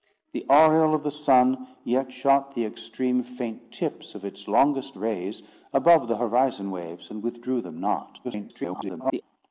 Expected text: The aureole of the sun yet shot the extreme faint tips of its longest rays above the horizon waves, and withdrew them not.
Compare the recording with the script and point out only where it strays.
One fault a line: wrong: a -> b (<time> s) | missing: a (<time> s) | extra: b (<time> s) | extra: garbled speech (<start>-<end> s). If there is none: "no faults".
extra: garbled speech (8.2-9.2 s)